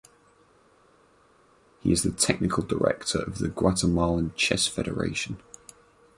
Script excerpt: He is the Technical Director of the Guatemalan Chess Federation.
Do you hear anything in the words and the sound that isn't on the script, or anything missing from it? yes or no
no